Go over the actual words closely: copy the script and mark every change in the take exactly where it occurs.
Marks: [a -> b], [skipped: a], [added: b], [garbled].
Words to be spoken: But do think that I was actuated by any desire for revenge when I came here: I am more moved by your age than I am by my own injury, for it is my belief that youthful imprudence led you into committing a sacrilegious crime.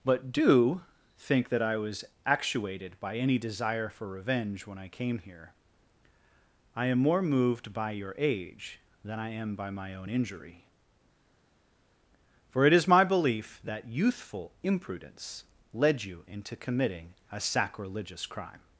But do think that I was actuated by any desire for revenge when I came here: I am more moved by your age than I am by my own injury, for it is my belief that youthful imprudence led you into committing a sacrilegious crime.